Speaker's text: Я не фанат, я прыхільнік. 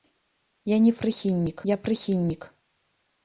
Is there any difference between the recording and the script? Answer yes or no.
yes